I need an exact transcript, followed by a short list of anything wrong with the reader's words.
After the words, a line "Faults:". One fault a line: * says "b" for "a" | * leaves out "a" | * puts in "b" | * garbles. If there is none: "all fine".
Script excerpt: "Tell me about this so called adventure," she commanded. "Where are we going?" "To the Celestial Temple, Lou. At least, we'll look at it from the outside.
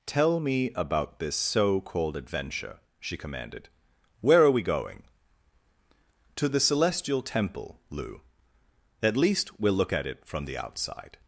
"Tell me about this so called adventure," she commanded. "Where are we going?" "To the Celestial Temple, Lou. At least, we'll look at it from the outside.
Faults:
all fine